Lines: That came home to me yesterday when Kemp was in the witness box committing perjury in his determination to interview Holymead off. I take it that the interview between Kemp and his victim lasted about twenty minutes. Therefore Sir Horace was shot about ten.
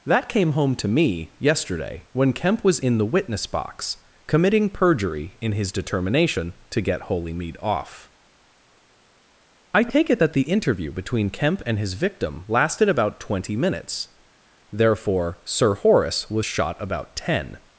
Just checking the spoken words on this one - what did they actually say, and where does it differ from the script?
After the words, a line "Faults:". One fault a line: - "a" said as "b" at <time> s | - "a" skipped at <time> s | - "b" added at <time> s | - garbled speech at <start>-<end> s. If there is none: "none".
That came home to me yesterday when Kemp was in the witness box committing perjury in his determination to get Holymead off. I take it that the interview between Kemp and his victim lasted about twenty minutes. Therefore Sir Horace was shot about ten.
Faults:
- "interview" said as "get" at 6.8 s